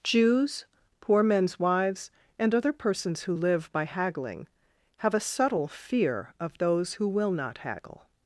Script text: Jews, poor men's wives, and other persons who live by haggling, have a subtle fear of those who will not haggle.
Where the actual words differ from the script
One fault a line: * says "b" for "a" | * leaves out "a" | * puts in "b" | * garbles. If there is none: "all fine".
all fine